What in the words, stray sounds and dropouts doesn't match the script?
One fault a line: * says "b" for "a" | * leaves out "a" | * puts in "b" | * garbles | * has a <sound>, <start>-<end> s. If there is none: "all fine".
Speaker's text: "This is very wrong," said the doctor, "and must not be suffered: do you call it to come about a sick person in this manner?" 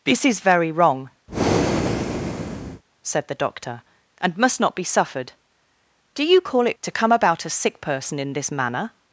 * has a breath, 1.3-2.8 s